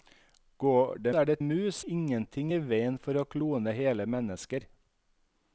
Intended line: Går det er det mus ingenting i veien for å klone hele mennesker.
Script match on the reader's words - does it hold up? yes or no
yes